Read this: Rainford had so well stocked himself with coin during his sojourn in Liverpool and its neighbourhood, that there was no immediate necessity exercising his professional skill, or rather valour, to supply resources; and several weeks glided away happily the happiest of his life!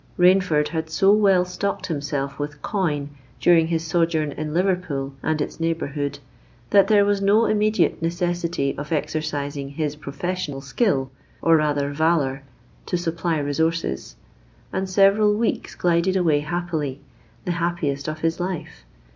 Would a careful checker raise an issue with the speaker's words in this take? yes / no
yes